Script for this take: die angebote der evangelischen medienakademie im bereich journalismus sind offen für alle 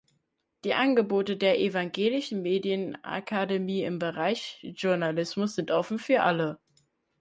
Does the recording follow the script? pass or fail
pass